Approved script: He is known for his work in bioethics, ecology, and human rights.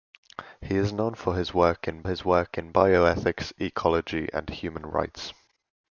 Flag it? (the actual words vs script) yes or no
yes